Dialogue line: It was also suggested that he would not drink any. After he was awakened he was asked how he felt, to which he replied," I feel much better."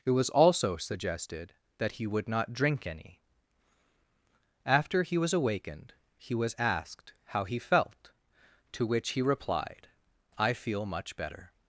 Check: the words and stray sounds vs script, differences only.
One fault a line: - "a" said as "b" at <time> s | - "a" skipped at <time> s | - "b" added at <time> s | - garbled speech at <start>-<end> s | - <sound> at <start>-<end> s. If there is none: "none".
none